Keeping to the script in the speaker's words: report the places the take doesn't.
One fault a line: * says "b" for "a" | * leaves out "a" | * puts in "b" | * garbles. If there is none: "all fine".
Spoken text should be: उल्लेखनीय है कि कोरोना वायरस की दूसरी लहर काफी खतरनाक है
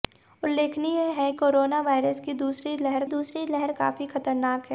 * leaves out "कि"
* puts in "दूसरी लहर"